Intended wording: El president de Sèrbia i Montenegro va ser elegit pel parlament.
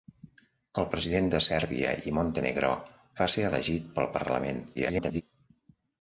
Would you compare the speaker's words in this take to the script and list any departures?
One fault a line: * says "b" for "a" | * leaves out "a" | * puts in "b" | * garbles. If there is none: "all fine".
* garbles